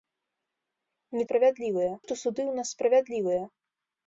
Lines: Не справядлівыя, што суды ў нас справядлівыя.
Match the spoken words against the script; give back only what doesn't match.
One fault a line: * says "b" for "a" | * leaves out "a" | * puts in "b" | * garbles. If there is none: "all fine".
all fine